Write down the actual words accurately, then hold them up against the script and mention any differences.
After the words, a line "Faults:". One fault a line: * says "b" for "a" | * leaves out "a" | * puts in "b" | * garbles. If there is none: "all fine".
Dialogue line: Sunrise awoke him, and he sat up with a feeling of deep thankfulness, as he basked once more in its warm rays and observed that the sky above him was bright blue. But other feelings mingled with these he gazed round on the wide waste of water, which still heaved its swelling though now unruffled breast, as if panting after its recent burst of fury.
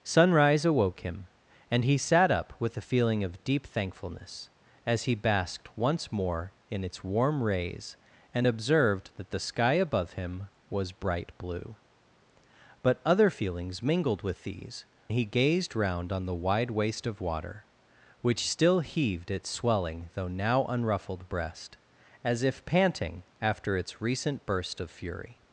Sunrise awoke him, and he sat up with a feeling of deep thankfulness, as he basked once more in its warm rays and observed that the sky above him was bright blue. But other feelings mingled with these he gazed round on the wide waste of water, which still heaved its swelling though now unruffled breast, as if panting after its recent burst of fury.
Faults:
all fine